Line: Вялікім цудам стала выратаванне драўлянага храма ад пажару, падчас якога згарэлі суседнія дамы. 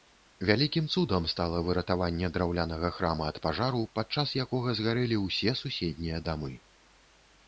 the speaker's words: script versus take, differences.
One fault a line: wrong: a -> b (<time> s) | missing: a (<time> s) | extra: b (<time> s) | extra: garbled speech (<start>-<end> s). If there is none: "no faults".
extra: ўсе (5.3 s)